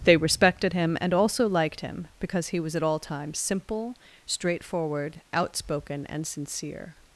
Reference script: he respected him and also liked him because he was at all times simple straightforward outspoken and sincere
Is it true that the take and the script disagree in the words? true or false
true